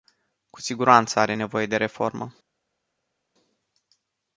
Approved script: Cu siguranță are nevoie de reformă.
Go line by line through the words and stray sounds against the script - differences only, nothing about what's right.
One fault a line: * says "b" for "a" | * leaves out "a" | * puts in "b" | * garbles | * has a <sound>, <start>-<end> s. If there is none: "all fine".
all fine